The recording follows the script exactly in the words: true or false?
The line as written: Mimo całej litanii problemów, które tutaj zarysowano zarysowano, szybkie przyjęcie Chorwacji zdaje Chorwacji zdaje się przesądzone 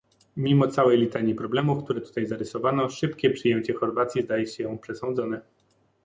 false